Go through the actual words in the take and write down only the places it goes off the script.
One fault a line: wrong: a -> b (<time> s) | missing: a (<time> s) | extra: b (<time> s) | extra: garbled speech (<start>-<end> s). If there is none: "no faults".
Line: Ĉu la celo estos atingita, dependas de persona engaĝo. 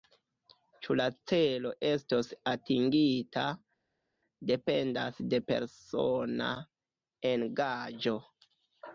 no faults